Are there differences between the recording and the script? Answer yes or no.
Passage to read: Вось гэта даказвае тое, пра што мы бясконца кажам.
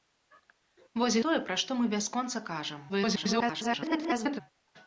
yes